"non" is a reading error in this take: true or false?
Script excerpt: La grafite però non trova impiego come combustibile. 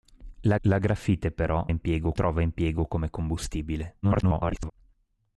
true